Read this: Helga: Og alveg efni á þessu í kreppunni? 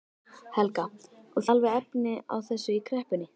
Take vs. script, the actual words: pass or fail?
pass